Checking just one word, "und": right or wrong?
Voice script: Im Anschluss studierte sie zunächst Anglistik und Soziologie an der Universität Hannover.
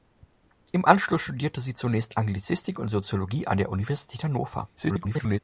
right